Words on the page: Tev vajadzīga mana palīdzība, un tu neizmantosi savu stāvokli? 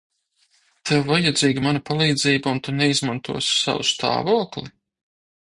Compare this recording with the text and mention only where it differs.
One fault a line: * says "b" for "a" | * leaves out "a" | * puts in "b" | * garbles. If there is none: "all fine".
all fine